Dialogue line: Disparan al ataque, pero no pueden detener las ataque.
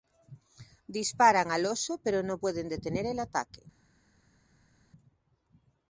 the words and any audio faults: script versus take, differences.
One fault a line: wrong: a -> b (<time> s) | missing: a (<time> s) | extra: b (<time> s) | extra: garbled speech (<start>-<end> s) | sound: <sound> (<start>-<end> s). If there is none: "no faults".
wrong: ataque -> oso (1.7 s)
wrong: las -> el (3.1 s)